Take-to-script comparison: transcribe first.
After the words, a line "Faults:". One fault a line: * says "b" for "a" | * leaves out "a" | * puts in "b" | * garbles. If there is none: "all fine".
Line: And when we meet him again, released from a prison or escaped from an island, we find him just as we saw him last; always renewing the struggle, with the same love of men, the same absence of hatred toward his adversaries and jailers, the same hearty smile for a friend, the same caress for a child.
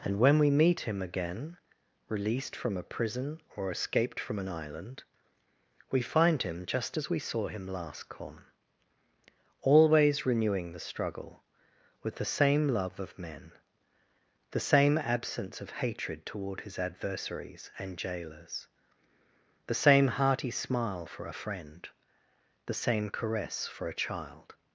And when we meet him again, released from a prison or escaped from an island, we find him just as we saw him last; come always renewing the struggle, with the same love of men, the same absence of hatred toward his adversaries and jailers, the same hearty smile for a friend, the same caress for a child.
Faults:
* puts in "come"